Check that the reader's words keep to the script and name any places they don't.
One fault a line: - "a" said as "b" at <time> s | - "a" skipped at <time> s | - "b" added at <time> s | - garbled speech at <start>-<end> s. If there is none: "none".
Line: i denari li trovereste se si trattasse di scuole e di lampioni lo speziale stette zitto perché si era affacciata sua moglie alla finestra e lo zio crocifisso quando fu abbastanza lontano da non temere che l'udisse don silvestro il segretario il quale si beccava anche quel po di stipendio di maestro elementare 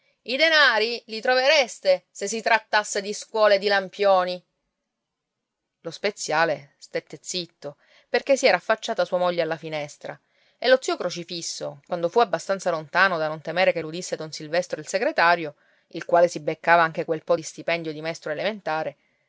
none